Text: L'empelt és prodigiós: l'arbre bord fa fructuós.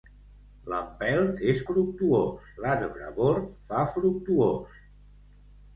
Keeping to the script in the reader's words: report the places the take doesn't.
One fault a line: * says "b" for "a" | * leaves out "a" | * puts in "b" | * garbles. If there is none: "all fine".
* says "fructuós" for "prodigiós"